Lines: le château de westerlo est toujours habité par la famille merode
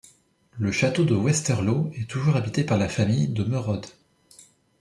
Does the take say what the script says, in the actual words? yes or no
no